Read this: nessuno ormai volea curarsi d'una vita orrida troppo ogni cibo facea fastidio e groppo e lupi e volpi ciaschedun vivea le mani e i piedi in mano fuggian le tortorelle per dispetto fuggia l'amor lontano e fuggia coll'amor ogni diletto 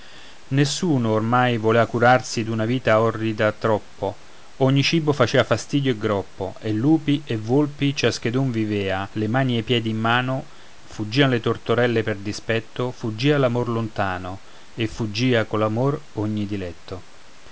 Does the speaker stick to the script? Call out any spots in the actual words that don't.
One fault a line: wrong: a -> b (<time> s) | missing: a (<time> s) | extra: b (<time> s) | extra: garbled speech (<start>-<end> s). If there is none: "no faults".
no faults